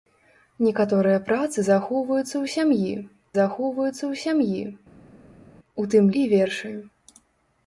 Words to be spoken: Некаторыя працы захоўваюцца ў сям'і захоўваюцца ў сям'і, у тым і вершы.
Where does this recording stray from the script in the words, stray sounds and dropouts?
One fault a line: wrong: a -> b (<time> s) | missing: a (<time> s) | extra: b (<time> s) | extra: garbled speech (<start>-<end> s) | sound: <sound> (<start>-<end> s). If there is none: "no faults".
no faults